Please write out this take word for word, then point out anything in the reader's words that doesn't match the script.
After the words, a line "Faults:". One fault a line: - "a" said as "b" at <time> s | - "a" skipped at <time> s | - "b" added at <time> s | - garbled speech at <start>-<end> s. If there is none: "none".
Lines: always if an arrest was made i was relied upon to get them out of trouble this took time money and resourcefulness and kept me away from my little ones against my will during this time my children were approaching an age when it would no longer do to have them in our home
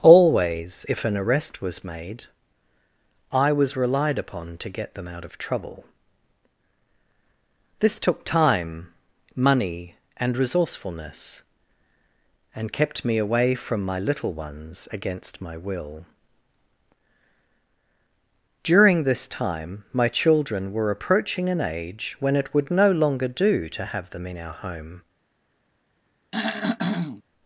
always if an arrest was made i was relied upon to get them out of trouble this took time money and resourcefulness and kept me away from my little ones against my will during this time my children were approaching an age when it would no longer do to have them in our home
Faults:
none